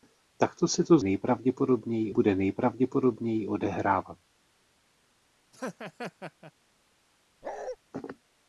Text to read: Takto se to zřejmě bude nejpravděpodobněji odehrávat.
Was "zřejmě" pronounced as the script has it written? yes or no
no